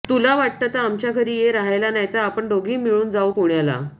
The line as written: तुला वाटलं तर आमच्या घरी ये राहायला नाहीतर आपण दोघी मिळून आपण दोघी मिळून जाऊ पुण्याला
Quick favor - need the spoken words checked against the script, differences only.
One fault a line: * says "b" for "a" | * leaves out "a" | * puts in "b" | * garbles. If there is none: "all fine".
* leaves out "आपण दोघी मिळून"